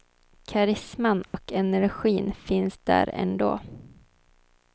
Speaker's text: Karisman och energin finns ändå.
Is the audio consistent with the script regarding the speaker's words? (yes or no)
no